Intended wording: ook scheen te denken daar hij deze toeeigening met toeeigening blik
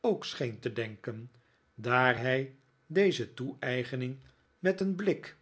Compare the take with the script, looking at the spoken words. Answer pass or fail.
fail